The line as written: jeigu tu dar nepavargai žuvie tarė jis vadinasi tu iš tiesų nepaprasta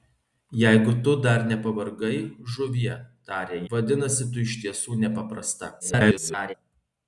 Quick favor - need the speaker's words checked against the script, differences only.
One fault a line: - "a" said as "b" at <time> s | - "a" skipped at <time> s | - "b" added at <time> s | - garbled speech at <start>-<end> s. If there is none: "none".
- "jis" skipped at 3.6 s
- garbled speech at 5.8-6.5 s